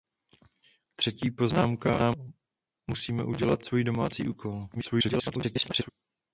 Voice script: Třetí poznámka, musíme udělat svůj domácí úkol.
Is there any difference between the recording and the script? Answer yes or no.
yes